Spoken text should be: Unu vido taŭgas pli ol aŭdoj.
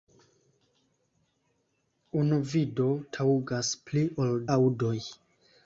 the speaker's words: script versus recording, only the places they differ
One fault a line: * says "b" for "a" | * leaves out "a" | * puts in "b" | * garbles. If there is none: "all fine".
all fine